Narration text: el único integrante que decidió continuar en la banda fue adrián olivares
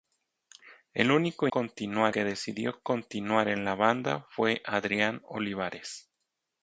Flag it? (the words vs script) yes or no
yes